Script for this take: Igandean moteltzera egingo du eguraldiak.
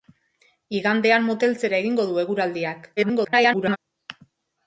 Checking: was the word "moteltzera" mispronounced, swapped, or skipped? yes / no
no